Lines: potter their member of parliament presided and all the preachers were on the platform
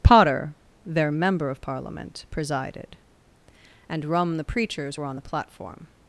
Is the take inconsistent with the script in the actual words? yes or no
yes